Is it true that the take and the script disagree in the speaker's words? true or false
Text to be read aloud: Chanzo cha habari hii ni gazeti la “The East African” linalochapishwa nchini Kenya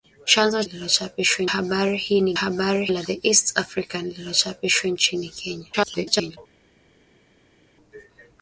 true